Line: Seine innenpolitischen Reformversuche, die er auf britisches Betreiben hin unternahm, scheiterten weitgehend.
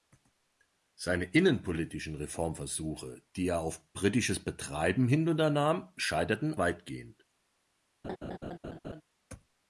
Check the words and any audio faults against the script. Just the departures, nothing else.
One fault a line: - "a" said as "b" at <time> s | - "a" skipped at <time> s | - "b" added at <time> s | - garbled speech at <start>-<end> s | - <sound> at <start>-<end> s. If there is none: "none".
- laugh at 8.0-9.0 s